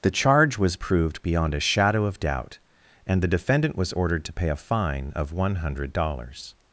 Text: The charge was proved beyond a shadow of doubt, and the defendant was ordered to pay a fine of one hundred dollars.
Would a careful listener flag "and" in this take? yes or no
no